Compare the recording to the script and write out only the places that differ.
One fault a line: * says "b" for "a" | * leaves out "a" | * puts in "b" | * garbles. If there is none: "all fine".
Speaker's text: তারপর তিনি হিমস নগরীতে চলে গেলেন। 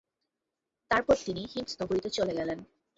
all fine